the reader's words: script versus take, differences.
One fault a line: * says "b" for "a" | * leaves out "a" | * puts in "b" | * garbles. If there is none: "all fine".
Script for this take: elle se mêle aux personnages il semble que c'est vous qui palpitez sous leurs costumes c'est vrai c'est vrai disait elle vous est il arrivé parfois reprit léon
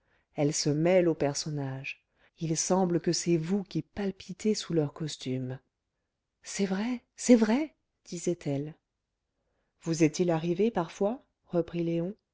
all fine